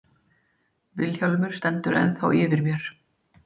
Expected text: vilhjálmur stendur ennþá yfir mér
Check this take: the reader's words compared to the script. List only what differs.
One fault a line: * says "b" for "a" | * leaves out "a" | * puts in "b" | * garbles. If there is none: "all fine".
all fine